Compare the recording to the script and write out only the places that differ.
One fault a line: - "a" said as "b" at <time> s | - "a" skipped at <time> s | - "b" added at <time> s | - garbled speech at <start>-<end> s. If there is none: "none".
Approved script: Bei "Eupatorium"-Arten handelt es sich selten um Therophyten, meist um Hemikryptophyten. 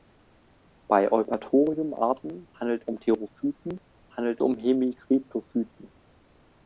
- "es sich selten" skipped at 2.9 s
- "meist" said as "handelt" at 4.1 s